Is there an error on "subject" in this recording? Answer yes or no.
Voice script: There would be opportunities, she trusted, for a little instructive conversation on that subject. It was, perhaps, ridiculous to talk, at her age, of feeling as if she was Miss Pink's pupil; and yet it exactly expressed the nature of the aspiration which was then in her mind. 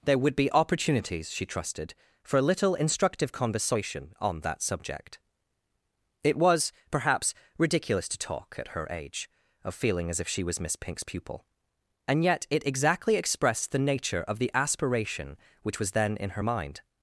no